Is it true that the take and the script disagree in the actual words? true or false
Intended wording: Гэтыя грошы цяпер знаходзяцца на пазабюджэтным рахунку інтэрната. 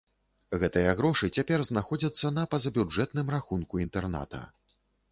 false